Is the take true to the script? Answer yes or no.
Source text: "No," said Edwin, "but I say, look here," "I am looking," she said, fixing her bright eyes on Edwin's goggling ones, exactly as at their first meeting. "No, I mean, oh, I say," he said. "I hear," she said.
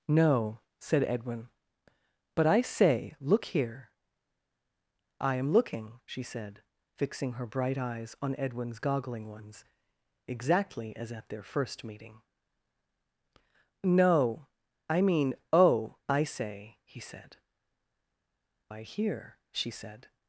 yes